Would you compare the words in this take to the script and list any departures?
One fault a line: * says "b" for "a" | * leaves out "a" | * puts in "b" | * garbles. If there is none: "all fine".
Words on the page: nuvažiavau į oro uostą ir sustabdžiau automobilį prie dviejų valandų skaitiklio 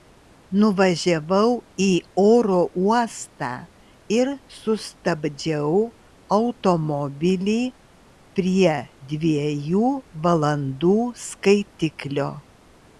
all fine